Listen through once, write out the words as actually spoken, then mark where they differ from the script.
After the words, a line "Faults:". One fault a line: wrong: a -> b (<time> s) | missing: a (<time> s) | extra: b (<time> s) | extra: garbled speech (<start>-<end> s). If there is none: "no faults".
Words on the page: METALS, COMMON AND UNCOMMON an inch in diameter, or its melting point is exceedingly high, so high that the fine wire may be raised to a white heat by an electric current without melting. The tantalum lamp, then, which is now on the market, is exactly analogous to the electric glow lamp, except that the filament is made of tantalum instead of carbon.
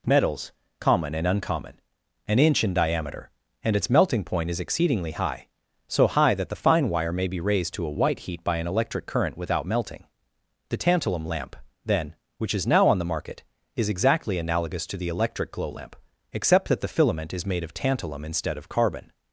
METALS, COMMON AND UNCOMMON an inch in diameter, and its melting point is exceedingly high, so high that the fine wire may be raised to a white heat by an electric current without melting. The tantalum lamp, then, which is now on the market, is exactly analogous to the electric glow lamp, except that the filament is made of tantalum instead of carbon.
Faults:
wrong: or -> and (3.6 s)